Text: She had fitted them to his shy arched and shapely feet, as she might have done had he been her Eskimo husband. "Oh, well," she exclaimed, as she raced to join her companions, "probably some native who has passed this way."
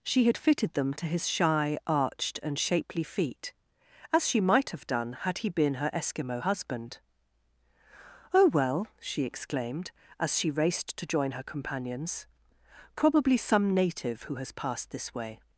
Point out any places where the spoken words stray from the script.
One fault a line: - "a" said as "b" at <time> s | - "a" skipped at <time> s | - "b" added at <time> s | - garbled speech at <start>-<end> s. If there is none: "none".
none